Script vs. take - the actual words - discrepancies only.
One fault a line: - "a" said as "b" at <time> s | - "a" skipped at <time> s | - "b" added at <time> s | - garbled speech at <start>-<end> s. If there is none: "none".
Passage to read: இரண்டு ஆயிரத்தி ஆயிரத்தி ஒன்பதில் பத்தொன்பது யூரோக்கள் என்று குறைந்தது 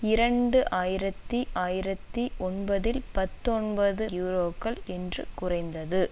none